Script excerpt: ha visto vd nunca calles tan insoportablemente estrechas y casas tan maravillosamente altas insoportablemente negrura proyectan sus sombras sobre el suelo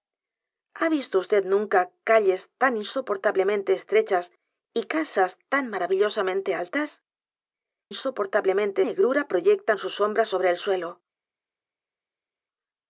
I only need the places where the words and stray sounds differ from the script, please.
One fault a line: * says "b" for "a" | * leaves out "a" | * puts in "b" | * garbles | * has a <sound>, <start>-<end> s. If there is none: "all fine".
all fine